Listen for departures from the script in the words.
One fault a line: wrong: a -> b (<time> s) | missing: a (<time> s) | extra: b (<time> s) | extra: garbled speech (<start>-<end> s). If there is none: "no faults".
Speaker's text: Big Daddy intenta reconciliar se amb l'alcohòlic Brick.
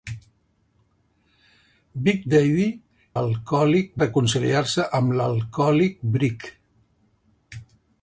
wrong: intenta -> l'alcohòlic (3.2 s)